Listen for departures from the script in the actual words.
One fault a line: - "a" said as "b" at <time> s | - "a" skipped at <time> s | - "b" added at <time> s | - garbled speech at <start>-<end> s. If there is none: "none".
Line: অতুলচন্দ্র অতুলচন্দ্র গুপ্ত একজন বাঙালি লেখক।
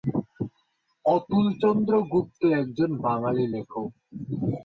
- "অতুলচন্দ্র" skipped at 1.9 s